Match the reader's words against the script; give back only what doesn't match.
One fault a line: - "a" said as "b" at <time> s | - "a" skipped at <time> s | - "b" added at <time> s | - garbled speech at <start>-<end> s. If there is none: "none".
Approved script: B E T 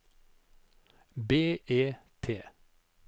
none